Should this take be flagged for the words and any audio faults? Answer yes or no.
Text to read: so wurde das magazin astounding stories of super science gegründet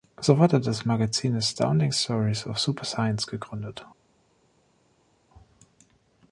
no